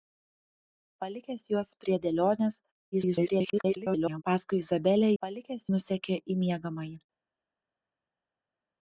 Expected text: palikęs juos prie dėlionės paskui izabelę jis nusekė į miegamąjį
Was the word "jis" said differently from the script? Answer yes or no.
yes